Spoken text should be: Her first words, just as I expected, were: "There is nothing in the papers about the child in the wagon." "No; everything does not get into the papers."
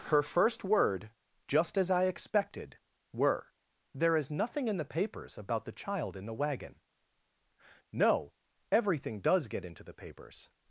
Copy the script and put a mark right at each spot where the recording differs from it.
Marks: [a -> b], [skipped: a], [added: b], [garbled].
Her first [words, -> word] just as I expected, were: "There is nothing in the papers about the child in the wagon." "No; everything does [skipped: not] get into the papers."